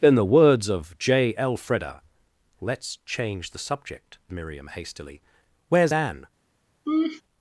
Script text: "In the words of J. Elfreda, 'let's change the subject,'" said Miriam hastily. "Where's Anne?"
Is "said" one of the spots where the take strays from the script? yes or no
yes